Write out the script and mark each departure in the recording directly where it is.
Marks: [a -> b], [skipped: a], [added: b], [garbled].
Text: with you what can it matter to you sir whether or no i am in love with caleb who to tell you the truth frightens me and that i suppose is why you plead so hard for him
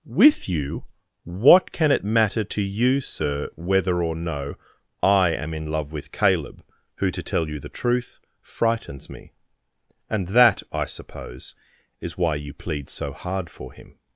with you what can it matter to you sir whether or no i am in love with caleb who to tell you the truth frightens me and that i suppose is why you plead so hard for him